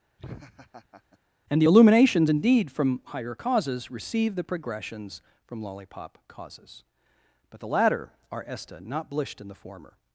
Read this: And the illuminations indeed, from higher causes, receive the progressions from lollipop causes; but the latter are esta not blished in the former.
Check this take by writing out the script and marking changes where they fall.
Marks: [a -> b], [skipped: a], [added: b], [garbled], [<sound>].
[laugh] And the illuminations indeed, from higher causes, receive the progressions from lollipop causes; but the latter are esta not blished in the former.